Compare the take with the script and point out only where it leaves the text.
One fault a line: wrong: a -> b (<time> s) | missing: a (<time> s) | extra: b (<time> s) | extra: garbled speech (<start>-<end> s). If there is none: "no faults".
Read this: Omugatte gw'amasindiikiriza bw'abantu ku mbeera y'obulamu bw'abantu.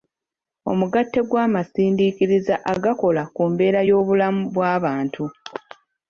wrong: bw'abantu -> agakola (2.7 s)